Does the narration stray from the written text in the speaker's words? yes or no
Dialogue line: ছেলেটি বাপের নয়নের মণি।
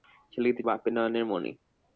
no